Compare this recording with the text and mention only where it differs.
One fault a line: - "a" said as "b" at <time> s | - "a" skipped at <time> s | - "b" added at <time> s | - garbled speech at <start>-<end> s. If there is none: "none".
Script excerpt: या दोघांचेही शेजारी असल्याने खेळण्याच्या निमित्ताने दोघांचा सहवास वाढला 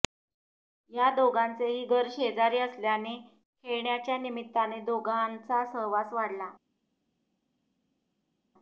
- "घर" added at 1.9 s